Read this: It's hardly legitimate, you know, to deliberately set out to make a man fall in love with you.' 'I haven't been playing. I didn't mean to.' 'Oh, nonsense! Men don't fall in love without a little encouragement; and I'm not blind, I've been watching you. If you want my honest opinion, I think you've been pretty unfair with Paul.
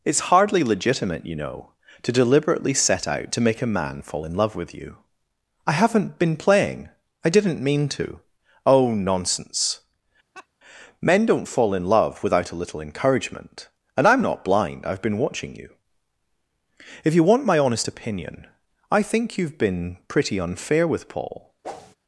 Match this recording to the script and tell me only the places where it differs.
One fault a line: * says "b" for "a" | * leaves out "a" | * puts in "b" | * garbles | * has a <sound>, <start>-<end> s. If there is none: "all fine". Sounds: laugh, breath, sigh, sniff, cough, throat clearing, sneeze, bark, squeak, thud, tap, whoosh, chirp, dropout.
* has a laugh, 10.3-10.5 s
* has a whoosh, 21.6-22.0 s